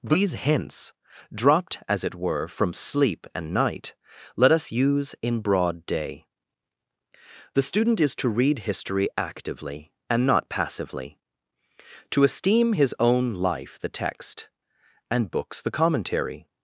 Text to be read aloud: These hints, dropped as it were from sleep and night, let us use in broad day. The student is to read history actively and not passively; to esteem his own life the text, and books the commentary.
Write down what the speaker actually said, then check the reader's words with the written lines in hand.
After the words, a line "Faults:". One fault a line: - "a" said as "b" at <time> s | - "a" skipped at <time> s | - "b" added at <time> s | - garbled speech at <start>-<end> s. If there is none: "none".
These hints, dropped as it were from sleep and night, let us use in broad day. The student is to read history actively and not passively; to esteem his own life the text, and books the commentary.
Faults:
none